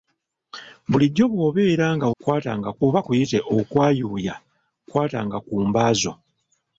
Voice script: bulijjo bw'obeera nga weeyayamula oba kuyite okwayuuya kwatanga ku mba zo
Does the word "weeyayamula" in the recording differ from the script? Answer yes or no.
yes